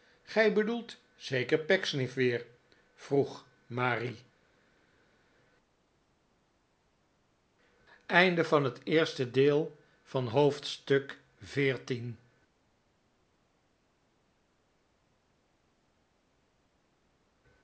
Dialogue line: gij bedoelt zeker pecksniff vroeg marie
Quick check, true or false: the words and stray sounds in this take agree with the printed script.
false